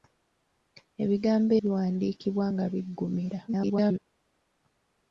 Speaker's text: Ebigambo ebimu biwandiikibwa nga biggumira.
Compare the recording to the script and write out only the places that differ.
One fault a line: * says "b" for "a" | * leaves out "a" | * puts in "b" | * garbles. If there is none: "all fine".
* leaves out "ebimu"
* garbles